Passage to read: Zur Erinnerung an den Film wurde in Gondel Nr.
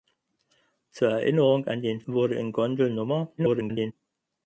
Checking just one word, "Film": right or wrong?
wrong